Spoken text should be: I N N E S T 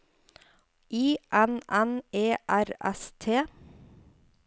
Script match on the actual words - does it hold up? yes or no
no